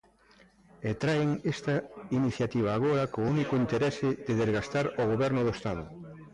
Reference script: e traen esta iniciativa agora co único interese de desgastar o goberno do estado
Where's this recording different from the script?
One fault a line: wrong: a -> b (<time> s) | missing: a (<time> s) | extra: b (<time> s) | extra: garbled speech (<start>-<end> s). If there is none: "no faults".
no faults